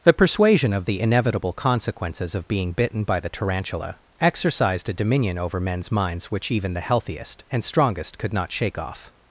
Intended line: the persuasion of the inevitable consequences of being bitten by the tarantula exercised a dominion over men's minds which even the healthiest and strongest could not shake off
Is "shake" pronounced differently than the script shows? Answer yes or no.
no